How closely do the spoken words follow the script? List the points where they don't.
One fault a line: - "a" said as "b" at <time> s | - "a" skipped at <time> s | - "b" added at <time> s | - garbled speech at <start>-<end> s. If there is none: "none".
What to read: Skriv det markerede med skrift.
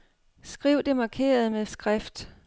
none